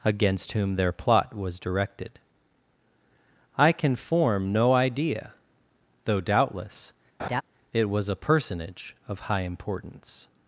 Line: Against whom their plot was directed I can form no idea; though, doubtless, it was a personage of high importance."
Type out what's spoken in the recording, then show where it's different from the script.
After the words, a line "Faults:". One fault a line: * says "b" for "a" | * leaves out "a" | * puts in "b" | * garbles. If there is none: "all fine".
Against whom their plot was directed I can form no idea; though, doubtless, it was a personage of high importance."
Faults:
all fine